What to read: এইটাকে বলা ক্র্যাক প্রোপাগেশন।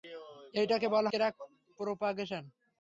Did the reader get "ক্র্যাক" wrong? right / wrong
right